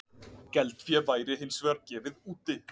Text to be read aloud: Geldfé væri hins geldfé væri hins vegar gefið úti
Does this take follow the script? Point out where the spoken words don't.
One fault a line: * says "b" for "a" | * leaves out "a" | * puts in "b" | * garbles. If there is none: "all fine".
* leaves out "geldfé væri hins"